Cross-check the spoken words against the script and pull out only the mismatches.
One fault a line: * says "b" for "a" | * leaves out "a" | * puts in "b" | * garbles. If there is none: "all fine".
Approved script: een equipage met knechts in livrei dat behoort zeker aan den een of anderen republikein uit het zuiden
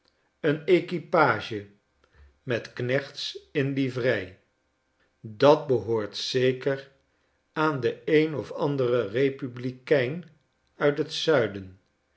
all fine